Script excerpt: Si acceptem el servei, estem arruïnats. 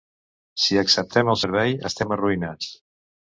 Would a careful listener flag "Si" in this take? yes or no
no